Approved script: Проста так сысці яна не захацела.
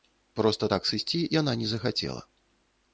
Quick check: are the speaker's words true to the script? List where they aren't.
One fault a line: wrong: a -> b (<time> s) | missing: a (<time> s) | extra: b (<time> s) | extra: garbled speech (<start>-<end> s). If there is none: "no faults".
no faults